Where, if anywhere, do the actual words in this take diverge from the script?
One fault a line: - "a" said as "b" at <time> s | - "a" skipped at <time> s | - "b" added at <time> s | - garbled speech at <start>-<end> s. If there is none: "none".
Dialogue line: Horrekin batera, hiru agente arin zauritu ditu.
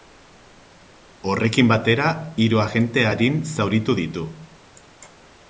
none